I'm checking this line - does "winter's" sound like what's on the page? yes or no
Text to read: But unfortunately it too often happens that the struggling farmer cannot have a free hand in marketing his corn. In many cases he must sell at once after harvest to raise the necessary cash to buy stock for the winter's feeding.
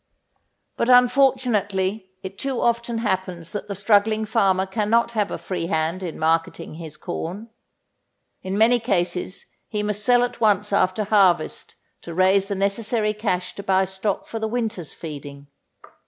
yes